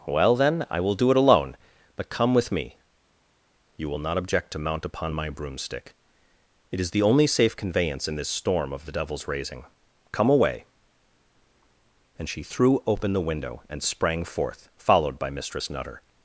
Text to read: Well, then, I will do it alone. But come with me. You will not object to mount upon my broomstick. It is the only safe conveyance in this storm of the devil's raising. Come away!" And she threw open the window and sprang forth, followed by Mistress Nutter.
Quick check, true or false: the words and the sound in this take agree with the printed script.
true